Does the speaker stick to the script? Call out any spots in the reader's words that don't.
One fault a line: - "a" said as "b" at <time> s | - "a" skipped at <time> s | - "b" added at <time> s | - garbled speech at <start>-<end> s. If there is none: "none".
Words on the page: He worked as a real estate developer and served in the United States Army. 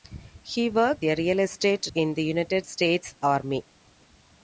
- "as" skipped at 1.1 s
- "developer and served" skipped at 1.8 s